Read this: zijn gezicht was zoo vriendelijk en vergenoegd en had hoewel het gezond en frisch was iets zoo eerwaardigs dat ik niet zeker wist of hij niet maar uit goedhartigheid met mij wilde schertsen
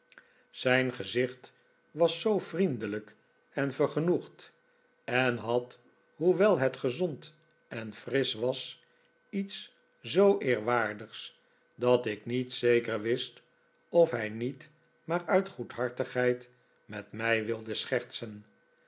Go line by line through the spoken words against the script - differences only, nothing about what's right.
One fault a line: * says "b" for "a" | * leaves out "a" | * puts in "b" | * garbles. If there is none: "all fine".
all fine